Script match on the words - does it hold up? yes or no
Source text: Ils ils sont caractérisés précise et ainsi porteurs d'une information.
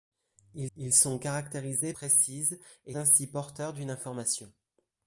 yes